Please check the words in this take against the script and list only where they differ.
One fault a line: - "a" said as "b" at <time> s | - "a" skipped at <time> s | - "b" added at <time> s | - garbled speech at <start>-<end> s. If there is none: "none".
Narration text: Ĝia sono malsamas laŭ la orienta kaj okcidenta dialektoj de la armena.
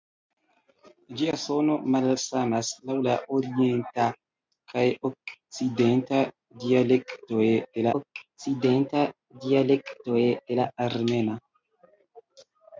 - "okcidenta dialektoj de" added at 8.0 s